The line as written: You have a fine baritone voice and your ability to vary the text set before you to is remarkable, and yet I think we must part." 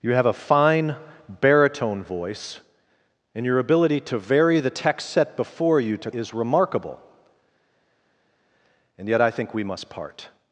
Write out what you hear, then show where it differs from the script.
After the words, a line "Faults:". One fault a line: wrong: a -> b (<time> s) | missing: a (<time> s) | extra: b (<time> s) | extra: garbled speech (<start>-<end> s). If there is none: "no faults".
You have a fine baritone voice and your ability to vary the text set before you to is remarkable, and yet I think we must part."
Faults:
no faults